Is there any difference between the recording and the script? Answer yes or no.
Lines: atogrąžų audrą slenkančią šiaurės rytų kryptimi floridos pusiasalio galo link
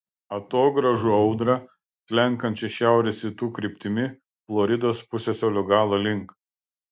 no